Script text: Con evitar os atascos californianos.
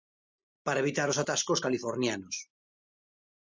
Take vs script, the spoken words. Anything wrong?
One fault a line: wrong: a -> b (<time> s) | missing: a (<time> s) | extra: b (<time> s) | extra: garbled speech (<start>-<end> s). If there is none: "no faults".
wrong: Con -> Para (0.7 s)